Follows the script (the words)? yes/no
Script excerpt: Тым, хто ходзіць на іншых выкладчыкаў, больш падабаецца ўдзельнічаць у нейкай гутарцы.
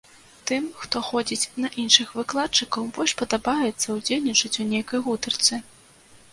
yes